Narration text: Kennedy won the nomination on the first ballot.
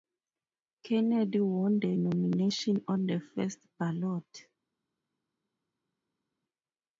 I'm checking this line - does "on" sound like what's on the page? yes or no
yes